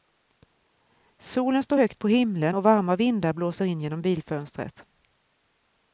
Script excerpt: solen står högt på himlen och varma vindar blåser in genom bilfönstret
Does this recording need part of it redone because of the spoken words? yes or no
no